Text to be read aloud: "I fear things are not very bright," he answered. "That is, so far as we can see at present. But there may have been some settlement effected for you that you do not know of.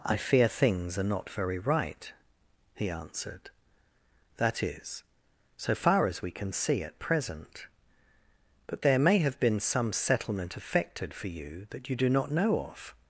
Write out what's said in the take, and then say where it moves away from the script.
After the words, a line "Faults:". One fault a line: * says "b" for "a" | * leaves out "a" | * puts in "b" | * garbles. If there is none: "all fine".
"I fear things are not very right," he answered. "That is, so far as we can see at present. But there may have been some settlement effected for you that you do not know of.
Faults:
* says "right" for "bright"